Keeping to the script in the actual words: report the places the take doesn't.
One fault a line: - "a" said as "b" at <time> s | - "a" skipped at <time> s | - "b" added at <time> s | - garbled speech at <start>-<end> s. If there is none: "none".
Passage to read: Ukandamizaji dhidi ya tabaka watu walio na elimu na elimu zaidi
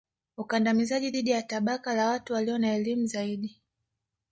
- "la" added at 1.9 s
- "na elimu" skipped at 3.1 s